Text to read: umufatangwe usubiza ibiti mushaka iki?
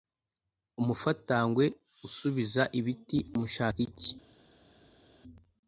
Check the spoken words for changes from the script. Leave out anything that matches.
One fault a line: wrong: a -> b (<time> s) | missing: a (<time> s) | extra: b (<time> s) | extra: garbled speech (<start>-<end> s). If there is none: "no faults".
no faults